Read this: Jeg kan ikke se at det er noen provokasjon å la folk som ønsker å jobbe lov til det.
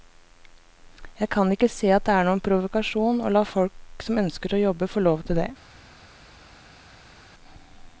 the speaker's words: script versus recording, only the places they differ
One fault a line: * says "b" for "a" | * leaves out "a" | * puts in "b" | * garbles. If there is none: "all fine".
* puts in "få"